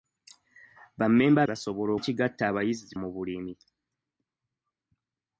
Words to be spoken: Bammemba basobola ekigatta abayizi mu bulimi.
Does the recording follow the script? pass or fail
pass